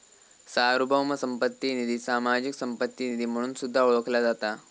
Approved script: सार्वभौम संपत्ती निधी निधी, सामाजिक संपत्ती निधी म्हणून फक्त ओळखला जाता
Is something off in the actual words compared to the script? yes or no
yes